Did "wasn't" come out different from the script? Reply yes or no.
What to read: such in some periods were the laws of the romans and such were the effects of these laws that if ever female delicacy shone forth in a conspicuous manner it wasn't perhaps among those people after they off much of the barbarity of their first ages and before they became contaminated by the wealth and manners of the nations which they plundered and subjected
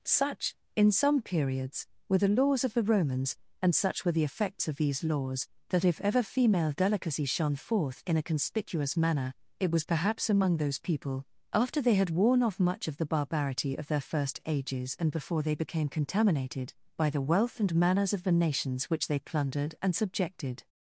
yes